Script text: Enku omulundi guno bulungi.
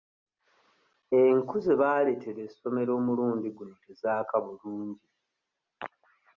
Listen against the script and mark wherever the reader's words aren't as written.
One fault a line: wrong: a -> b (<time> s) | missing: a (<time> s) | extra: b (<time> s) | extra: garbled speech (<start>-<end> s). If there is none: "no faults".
extra: ze baaleetera essomero (1.6 s)
extra: tezaaka (3.8 s)